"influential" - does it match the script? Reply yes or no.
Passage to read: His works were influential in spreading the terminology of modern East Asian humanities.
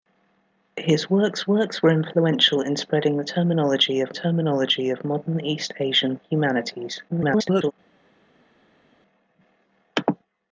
yes